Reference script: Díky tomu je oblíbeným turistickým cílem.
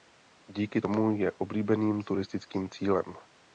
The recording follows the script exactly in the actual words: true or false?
true